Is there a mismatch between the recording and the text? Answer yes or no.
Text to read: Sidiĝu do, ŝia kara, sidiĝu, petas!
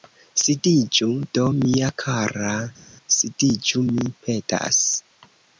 yes